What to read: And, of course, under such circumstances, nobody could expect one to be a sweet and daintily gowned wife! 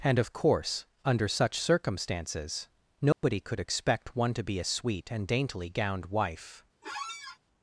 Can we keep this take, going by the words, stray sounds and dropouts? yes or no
no